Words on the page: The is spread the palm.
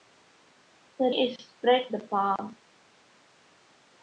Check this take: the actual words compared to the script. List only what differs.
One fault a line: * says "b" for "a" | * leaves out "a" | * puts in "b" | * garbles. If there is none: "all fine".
all fine